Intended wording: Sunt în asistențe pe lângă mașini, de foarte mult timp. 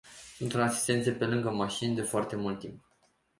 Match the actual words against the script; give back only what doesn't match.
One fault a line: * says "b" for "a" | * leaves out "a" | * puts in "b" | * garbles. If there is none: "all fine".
all fine